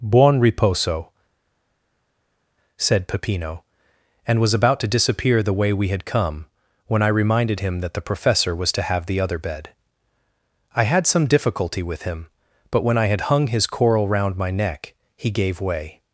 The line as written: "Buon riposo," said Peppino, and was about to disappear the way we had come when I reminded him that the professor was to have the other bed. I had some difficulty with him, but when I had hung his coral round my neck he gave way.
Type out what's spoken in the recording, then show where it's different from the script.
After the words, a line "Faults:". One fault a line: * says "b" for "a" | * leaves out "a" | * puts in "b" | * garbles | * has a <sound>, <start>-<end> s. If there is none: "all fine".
"Buon riposo," said Peppino, and was about to disappear the way we had come when I reminded him that the professor was to have the other bed. I had some difficulty with him, but when I had hung his coral round my neck he gave way.
Faults:
all fine